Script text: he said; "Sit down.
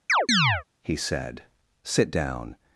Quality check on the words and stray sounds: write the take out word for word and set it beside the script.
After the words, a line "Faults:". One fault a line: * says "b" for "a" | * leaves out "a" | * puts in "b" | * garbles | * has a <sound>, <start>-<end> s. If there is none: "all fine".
he said; "Sit down.
Faults:
* has a chirp, 0.1-0.6 s